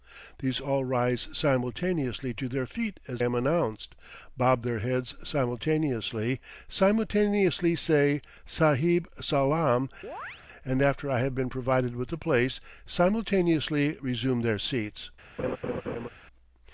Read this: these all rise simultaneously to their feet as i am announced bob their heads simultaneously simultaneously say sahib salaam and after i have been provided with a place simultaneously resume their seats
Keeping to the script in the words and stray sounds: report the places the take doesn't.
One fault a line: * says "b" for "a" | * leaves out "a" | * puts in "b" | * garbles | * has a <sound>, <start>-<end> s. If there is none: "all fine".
* leaves out "i"
* has a chirp, 10.0-10.4 s
* has a laugh, 15.4-16.1 s